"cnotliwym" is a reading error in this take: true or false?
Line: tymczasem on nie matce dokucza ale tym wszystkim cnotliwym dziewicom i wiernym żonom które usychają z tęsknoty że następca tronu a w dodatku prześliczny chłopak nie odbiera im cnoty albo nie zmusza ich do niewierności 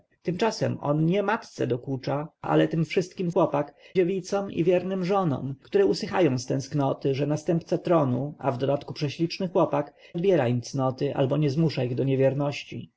true